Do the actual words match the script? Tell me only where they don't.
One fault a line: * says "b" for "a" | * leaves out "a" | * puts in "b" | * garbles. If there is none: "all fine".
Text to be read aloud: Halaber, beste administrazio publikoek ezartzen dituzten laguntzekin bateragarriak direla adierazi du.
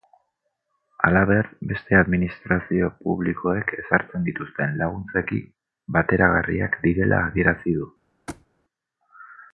all fine